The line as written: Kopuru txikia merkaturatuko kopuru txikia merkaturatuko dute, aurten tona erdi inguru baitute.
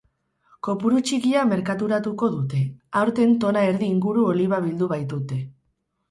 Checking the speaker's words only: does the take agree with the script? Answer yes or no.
no